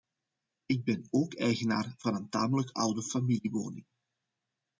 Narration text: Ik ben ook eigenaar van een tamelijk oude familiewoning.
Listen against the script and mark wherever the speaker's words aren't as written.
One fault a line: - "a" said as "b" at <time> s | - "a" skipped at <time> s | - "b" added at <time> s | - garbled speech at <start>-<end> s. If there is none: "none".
none